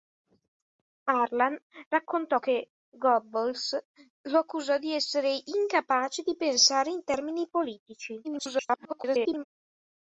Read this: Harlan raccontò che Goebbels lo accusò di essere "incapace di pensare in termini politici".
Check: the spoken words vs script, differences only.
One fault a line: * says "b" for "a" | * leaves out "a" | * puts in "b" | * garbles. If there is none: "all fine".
* garbles